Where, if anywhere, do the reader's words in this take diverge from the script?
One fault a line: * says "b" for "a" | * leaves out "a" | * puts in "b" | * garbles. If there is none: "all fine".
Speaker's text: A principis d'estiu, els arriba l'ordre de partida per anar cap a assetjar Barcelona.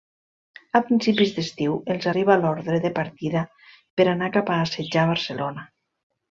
all fine